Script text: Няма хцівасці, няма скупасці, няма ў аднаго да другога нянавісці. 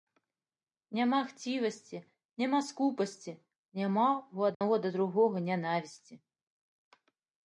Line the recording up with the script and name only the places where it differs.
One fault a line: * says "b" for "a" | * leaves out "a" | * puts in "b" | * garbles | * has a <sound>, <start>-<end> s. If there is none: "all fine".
* has a dropout, 4.5-4.6 s